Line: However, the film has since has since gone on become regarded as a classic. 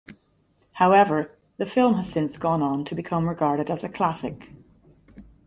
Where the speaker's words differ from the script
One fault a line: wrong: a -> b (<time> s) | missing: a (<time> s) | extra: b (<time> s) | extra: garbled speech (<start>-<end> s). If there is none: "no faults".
missing: has since (2.4 s)
extra: to (2.9 s)